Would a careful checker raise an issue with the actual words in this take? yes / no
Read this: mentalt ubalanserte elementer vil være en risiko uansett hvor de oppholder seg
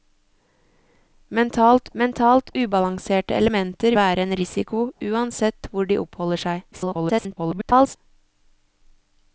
yes